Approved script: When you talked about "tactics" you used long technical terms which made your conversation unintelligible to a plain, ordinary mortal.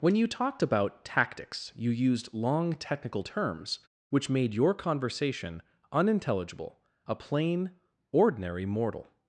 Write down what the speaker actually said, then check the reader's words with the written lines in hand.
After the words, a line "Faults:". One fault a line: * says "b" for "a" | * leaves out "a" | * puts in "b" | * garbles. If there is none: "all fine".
When you talked about "tactics" you used long technical terms which made your conversation unintelligible a plain, ordinary mortal.
Faults:
* leaves out "to"